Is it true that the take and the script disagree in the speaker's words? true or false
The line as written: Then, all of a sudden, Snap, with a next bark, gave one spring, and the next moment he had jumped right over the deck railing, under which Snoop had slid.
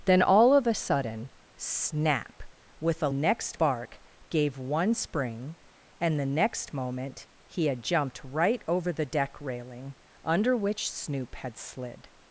false